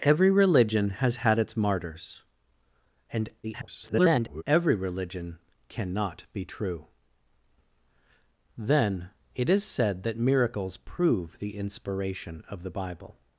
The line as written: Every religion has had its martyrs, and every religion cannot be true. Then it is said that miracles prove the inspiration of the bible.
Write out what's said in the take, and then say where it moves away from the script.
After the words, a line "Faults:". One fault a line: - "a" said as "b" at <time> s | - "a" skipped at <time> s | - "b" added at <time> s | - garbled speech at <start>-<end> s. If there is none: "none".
Every religion has had its martyrs, and [garbled] every religion cannot be true. Then it is said that miracles prove the inspiration of the bible.
Faults:
- garbled speech at 3.4-4.4 s